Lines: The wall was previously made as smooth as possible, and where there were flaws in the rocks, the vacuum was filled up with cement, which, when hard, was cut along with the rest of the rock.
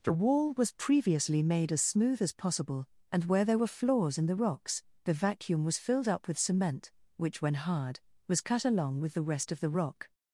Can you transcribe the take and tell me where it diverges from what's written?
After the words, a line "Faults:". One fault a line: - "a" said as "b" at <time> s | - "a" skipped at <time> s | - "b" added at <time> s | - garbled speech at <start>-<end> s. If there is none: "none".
The wall was previously made as smooth as possible, and where there were flaws in the rocks, the vacuum was filled up with cement, which, when hard, was cut along with the rest of the rock.
Faults:
none